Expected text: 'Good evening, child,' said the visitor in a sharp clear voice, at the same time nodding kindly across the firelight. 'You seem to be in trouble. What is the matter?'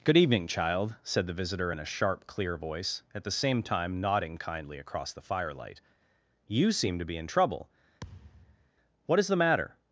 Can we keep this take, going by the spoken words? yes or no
yes